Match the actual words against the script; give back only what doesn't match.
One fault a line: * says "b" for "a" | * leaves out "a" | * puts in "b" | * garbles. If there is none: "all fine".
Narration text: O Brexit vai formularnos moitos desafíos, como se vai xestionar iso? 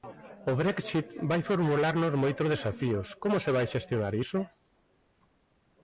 all fine